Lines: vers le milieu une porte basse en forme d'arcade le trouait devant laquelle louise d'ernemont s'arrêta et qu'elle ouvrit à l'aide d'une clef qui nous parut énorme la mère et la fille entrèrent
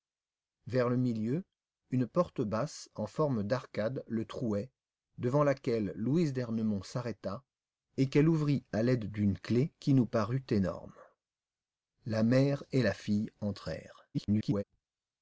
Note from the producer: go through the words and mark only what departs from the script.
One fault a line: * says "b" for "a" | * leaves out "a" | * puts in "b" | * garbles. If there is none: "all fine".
* garbles